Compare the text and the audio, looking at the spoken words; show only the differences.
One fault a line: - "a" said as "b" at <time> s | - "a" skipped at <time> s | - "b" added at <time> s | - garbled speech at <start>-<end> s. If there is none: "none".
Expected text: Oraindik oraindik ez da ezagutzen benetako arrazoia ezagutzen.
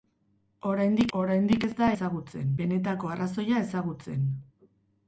none